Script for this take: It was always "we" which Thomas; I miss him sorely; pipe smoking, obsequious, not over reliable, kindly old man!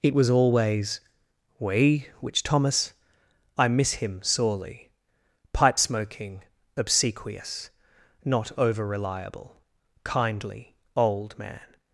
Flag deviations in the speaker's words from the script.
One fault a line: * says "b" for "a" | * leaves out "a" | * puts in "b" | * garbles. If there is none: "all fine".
all fine